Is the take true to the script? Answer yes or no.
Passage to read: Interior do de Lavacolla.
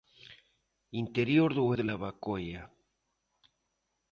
yes